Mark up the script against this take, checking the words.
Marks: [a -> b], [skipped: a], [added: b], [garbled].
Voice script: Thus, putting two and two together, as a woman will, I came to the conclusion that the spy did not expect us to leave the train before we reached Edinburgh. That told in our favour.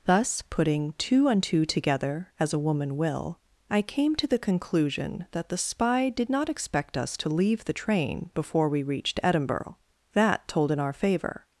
Thus, putting two and two together, as a woman will, I came to the conclusion that the spy did not expect us to leave the train before we reached Edinburgh. That told in our favour.